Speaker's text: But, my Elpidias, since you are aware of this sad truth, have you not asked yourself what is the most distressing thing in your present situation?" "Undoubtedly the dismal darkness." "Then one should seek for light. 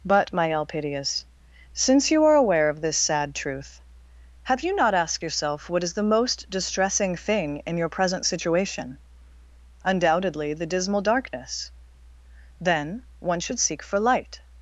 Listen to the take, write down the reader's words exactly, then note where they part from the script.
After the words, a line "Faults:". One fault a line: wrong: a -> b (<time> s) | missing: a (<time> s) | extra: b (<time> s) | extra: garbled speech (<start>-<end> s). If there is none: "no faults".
But, my Elpidias, since you are aware of this sad truth, have you not asked yourself what is the most distressing thing in your present situation?" "Undoubtedly the dismal darkness." "Then one should seek for light.
Faults:
no faults